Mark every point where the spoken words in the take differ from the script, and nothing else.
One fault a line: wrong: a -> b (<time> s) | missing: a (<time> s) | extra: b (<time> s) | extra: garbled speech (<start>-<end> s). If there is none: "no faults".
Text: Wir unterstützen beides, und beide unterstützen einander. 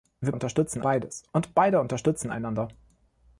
no faults